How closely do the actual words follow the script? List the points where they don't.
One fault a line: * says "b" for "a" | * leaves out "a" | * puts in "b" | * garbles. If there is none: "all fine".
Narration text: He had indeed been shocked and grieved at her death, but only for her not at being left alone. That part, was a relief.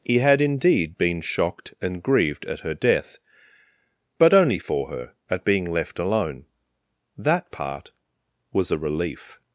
* leaves out "not"